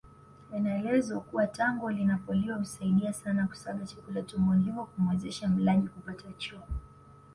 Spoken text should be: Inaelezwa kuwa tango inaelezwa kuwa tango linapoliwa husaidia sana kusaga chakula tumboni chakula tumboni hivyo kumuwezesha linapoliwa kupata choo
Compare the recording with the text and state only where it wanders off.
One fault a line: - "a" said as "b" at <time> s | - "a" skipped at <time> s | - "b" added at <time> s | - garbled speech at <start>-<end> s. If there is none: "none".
- "inaelezwa kuwa tango" skipped at 1.9 s
- "chakula tumboni" skipped at 4.6 s
- "linapoliwa" said as "mlaji" at 5.5 s